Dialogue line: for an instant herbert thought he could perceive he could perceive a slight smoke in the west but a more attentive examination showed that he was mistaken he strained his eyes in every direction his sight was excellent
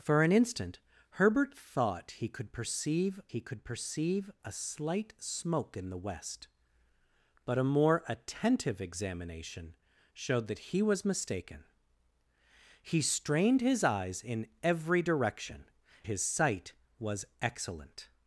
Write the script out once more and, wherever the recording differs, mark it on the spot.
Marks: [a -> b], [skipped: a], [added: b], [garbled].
for an instant herbert thought he could perceive he could perceive a slight smoke in the west but a more attentive examination showed that he was mistaken he strained his eyes in every direction his sight was excellent